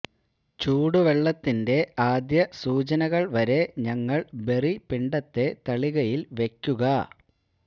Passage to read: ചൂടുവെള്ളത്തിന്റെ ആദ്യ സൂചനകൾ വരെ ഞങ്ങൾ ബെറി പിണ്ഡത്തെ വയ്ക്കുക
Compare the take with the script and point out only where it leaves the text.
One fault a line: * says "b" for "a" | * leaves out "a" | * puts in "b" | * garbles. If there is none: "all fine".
* puts in "തളികയിൽ"